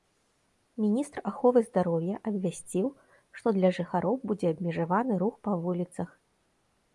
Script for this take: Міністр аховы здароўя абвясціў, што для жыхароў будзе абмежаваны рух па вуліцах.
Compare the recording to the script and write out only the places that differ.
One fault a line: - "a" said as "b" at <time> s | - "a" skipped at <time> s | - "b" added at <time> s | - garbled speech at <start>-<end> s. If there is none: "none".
none